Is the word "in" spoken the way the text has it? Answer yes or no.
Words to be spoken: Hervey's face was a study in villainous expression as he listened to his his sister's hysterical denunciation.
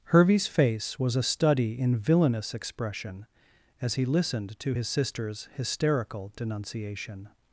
yes